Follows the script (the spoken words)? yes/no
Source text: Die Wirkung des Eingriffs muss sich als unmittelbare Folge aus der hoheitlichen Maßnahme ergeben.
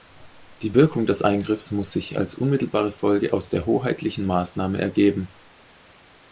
yes